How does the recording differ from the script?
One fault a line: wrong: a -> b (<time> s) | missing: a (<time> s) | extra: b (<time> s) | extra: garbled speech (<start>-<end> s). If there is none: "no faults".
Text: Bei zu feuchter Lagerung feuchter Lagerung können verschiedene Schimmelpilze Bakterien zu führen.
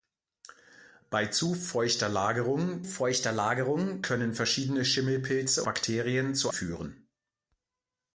no faults